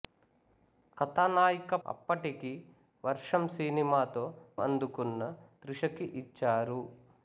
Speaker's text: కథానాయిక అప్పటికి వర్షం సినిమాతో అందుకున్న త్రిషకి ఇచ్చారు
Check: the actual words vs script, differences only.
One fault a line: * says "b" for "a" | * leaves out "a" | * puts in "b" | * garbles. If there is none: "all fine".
all fine